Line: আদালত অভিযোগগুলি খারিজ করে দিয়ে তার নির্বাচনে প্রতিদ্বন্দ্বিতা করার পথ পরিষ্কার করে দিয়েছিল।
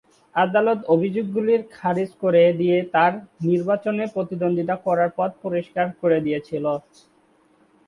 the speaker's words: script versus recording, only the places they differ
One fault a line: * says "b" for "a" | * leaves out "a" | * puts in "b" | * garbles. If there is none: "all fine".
all fine